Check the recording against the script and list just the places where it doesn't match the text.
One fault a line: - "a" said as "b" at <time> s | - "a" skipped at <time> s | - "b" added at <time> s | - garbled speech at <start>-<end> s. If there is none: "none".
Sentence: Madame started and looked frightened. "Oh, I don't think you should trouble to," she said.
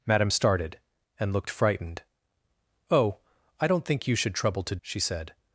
none